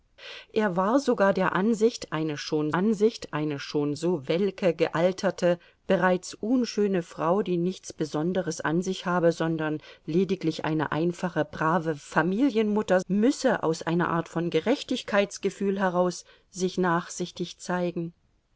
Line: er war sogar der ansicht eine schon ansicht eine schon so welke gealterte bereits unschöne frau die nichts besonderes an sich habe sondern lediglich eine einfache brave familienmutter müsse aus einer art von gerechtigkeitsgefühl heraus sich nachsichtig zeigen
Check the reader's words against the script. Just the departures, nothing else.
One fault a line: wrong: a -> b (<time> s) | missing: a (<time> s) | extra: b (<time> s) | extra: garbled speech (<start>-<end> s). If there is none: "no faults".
no faults